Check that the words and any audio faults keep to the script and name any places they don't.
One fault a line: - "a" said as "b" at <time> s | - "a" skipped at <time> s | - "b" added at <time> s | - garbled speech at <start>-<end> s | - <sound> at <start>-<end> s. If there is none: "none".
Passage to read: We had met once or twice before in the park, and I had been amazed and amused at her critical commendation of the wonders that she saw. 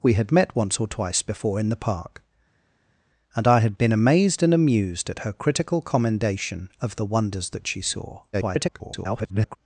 - garbled speech at 8.3-9.6 s